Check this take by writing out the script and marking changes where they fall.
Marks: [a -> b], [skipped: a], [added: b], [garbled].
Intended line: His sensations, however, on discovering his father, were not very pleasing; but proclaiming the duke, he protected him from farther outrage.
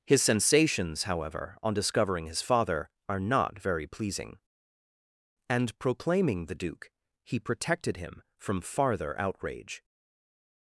His sensations, however, on discovering his father, [were -> are] not very pleasing; [but -> and] proclaiming the duke, he protected him from farther outrage.